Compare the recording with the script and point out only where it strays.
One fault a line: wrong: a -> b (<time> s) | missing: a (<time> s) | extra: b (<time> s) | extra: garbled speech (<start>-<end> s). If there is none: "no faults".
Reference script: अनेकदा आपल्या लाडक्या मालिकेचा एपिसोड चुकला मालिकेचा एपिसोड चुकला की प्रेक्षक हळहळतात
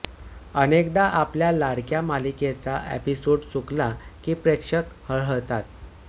missing: मालिकेचा एपिसोड चुकला (3.9 s)